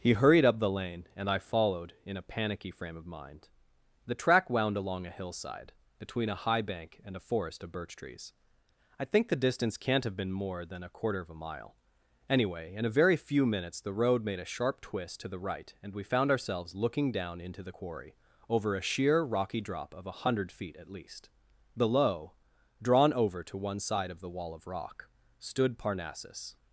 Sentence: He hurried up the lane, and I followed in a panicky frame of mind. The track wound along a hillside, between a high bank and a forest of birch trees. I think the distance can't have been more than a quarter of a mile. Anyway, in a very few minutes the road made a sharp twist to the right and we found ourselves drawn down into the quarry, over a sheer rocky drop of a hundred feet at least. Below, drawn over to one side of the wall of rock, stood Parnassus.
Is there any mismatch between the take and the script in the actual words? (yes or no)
yes